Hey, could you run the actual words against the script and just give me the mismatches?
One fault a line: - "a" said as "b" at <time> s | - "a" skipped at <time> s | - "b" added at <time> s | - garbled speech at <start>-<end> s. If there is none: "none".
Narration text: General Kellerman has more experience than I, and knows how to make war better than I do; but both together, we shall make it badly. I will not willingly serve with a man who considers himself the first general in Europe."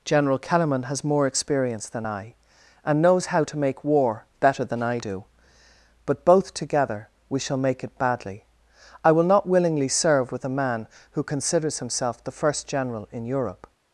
none